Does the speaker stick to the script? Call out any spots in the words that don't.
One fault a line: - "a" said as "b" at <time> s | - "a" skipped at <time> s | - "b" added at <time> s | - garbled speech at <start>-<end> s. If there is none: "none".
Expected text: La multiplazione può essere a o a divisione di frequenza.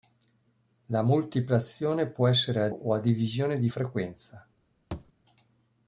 none